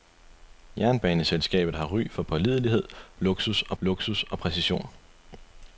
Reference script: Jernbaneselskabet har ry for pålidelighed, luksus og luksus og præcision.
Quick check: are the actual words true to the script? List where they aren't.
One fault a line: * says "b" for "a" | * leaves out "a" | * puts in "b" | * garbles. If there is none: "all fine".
all fine